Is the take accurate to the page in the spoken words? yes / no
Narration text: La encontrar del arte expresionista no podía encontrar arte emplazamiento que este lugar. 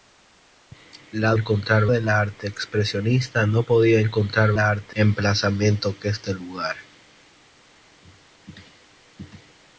yes